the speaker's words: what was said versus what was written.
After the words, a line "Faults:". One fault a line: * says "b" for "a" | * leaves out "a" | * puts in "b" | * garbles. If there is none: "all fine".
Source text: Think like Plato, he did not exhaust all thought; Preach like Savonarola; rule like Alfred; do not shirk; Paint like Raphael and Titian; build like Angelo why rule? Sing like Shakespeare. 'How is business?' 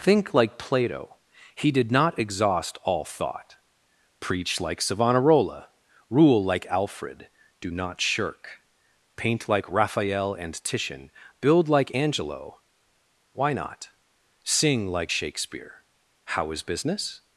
Think like Plato, he did not exhaust all thought; Preach like Savonarola; rule like Alfred; do not shirk; Paint like Raphael and Titian; build like Angelo why not? Sing like Shakespeare. 'How is business?'
Faults:
* says "not" for "rule"